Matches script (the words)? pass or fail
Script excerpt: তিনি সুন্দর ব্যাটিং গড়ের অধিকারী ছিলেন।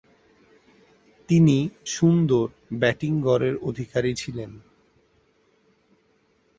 pass